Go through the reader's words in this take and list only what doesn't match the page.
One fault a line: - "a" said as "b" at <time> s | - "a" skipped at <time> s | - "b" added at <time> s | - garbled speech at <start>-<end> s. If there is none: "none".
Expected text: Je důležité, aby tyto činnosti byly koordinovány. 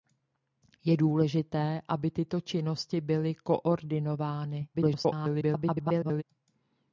- garbled speech at 4.7-6.2 s